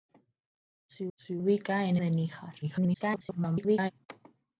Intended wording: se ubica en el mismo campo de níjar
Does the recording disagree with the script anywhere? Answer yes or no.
yes